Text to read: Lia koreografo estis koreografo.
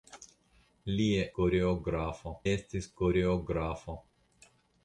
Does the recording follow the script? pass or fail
pass